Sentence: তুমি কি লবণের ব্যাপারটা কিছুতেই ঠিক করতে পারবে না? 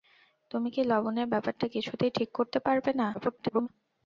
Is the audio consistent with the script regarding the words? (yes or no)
no